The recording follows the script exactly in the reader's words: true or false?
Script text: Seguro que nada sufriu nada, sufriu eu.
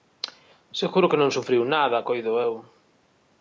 false